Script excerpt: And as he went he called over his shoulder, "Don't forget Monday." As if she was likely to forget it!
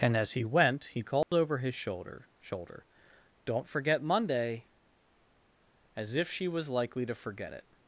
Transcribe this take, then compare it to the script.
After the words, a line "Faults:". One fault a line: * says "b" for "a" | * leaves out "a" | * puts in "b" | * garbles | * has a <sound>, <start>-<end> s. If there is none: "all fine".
And as he went he called over his shoulder shoulder, "Don't forget Monday." As if she was likely to forget it!
Faults:
* has a dropout, 1.2-1.3 s
* puts in "shoulder"